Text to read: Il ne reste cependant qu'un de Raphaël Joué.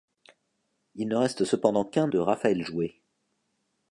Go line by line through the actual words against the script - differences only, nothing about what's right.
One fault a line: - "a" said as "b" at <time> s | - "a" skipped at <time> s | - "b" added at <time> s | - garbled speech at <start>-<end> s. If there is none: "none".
none